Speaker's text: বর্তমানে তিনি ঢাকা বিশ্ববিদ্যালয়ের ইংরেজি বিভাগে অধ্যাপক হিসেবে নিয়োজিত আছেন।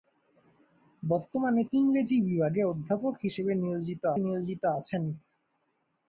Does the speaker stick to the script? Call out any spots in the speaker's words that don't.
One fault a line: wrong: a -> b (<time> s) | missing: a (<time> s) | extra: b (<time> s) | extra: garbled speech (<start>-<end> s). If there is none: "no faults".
missing: তিনি ঢাকা বিশ্ববিদ্যালয়ের (1.6 s)
extra: নিয়োজিত (4.2 s)